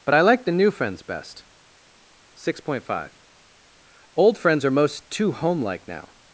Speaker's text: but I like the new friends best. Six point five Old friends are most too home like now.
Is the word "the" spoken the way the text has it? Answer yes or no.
yes